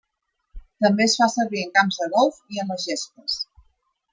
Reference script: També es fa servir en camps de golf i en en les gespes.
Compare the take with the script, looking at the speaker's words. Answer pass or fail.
fail